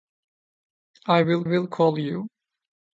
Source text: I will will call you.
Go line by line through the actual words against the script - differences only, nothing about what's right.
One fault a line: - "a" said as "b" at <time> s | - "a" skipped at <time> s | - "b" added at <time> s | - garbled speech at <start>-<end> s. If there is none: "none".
none